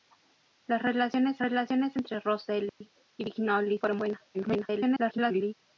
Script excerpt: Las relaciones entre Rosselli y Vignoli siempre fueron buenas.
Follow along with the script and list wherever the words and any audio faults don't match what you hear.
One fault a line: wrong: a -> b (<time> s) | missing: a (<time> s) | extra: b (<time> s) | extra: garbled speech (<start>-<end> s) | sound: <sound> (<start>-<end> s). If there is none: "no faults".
extra: relaciones (1.4 s)
sound: dropout (2.7-2.8 s)
missing: siempre (3.8 s)
extra: garbled speech (4.3-5.5 s)